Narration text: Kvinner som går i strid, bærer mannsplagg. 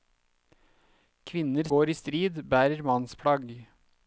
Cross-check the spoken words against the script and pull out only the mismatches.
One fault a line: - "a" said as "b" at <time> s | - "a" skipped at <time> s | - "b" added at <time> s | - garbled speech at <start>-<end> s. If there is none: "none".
- "som" skipped at 1.7 s